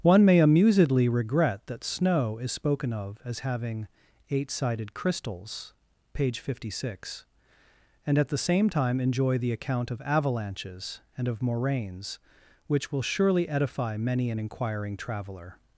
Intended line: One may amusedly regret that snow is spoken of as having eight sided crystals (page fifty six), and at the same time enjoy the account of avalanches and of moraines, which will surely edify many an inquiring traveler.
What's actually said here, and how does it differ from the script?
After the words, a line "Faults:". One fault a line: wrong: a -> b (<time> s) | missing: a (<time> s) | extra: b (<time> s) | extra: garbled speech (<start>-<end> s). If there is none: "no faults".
One may amusedly regret that snow is spoken of as having eight sided crystals (page fifty six), and at the same time enjoy the account of avalanches and of moraines, which will surely edify many an inquiring traveler.
Faults:
no faults